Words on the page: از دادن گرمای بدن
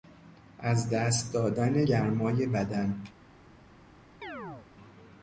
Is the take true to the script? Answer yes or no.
no